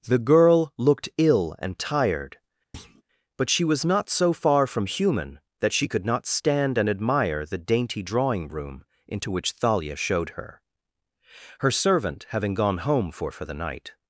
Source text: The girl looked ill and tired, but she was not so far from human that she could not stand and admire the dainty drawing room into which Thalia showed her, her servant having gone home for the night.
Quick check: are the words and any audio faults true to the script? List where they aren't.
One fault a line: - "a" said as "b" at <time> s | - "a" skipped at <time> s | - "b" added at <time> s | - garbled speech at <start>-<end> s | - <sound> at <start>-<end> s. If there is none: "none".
- thud at 2.7-3.0 s
- "for" added at 13.3 s